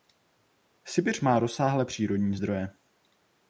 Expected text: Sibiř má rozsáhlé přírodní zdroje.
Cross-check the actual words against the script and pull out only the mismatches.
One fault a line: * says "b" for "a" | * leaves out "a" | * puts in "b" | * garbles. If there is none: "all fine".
all fine